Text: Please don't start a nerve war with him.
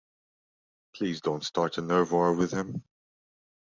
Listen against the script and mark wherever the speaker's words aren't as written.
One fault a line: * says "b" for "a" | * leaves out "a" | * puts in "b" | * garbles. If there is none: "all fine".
all fine